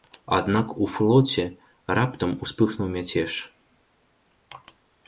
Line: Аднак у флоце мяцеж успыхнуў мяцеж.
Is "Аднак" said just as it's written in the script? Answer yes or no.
yes